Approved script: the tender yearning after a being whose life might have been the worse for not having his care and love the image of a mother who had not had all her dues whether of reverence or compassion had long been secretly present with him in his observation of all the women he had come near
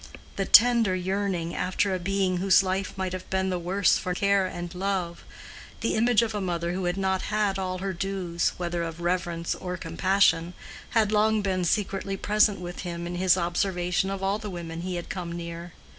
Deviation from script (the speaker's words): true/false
true